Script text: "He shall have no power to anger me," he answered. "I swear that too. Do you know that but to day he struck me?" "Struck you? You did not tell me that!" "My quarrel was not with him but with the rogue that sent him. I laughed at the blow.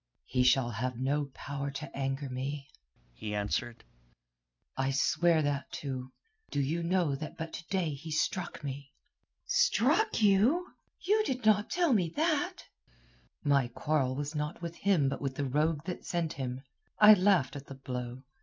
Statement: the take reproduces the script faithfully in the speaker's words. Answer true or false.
true